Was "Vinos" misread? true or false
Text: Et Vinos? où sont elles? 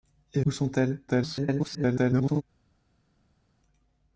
true